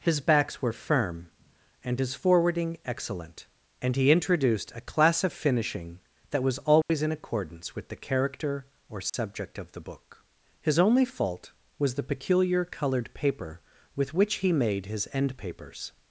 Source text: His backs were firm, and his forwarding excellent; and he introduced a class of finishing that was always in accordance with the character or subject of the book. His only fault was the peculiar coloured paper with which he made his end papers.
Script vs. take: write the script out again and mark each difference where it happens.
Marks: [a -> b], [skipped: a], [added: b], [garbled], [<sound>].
His backs were firm, and his forwarding excellent; and he introduced a class of finishing that was always [dropout] in accordance with the character or subject [dropout] of the book. His only fault was the peculiar coloured paper with which he made his end papers.